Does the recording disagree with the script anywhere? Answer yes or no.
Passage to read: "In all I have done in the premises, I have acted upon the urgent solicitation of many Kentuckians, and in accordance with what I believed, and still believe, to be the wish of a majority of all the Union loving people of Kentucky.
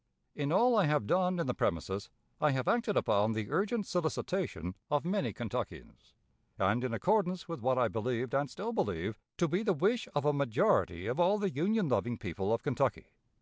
no